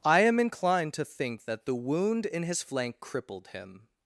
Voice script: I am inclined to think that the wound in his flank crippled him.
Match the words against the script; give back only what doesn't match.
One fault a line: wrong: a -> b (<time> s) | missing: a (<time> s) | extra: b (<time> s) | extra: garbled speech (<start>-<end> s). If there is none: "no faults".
no faults